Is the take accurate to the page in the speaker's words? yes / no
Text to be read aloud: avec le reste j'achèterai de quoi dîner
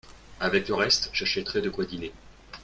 yes